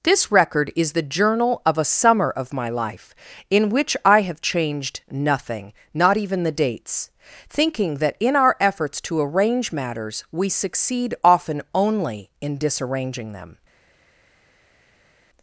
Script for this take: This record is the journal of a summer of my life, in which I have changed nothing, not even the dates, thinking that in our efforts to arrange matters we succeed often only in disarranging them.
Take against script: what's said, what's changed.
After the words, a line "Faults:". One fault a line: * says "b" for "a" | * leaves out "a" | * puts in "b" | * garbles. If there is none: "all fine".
This record is the journal of a summer of my life, in which I have changed nothing, not even the dates, thinking that in our efforts to arrange matters we succeed often only in disarranging them.
Faults:
all fine